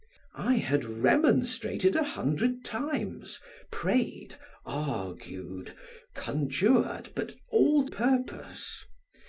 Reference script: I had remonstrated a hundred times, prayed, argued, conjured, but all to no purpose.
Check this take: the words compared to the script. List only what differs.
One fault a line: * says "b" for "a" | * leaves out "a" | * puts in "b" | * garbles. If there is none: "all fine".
* leaves out "to no"